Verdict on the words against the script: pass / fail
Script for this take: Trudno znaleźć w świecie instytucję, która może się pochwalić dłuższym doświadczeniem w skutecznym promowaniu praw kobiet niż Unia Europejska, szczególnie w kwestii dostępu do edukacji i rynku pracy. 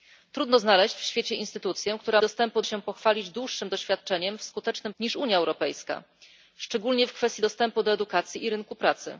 fail